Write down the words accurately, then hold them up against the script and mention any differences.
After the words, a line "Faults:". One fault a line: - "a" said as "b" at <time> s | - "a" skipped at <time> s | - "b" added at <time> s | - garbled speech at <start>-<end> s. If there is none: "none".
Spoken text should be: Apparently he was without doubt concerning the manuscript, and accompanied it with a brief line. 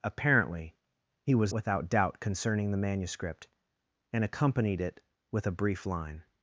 Apparently he was without doubt concerning the manuscript, and accompanied it with a brief line.
Faults:
none